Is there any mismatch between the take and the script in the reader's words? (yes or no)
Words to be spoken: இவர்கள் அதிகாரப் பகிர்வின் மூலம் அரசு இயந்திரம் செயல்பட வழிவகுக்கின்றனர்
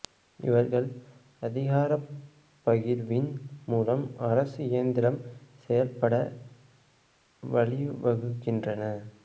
no